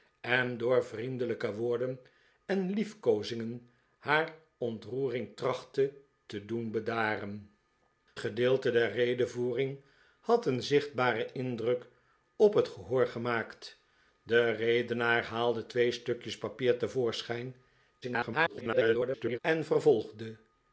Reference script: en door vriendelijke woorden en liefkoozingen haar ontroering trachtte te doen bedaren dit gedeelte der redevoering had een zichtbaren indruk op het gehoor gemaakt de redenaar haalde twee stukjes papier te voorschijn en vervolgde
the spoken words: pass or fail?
fail